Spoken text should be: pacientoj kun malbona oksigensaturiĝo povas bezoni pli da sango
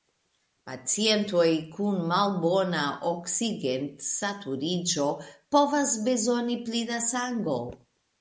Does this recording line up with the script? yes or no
yes